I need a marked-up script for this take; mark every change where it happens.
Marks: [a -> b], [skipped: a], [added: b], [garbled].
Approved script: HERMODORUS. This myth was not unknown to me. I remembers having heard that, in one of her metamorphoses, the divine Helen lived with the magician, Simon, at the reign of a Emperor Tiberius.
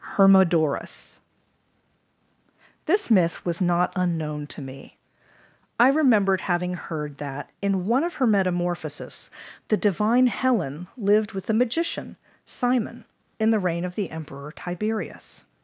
HERMODORUS. This myth was not unknown to me. I [remembers -> remembered] having heard that, in one of her metamorphoses, the divine Helen lived with the magician, Simon, [at -> in] the reign of [a -> the] Emperor Tiberius.